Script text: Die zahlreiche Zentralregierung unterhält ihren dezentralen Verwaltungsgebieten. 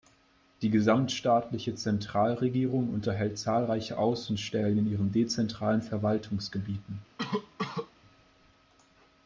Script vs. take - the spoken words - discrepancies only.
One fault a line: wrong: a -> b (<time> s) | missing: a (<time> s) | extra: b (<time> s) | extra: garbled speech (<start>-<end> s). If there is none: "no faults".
wrong: zahlreiche -> gesamtstaatliche (0.7 s)
extra: zahlreiche Außenstellen in (3.4 s)